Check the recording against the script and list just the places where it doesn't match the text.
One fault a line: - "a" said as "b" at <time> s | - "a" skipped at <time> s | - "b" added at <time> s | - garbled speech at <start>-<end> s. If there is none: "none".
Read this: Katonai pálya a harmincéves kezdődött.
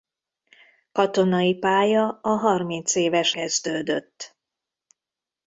none